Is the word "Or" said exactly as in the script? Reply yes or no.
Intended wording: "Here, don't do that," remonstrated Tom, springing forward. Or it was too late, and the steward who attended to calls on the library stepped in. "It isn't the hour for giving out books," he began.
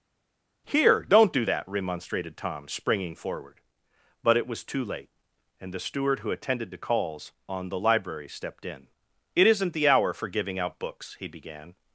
no